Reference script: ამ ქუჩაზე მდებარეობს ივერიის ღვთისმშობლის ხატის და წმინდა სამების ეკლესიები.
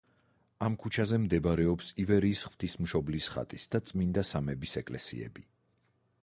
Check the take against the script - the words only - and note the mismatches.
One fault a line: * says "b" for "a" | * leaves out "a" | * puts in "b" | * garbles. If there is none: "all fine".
all fine